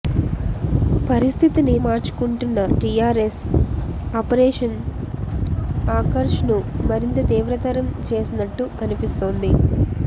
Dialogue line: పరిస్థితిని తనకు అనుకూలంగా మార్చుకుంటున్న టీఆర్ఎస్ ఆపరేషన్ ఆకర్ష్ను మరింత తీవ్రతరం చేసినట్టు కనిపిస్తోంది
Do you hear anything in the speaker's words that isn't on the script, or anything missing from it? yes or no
yes